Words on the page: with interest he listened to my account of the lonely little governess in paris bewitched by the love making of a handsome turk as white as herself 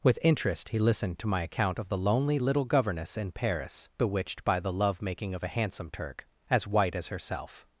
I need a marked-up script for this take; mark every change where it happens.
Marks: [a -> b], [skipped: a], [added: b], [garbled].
with interest he listened to my account of the lonely little governess in paris bewitched by the love making of a handsome turk as white as herself